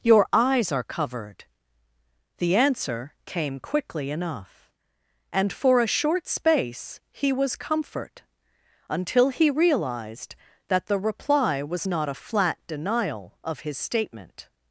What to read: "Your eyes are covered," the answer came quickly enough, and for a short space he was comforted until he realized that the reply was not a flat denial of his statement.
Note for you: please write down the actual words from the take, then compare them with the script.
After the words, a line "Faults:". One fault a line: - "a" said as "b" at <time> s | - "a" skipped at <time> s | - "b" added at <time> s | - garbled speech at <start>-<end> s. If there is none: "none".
"Your eyes are covered," the answer came quickly enough, and for a short space he was comfort until he realized that the reply was not a flat denial of his statement.
Faults:
- "comforted" said as "comfort" at 7.6 s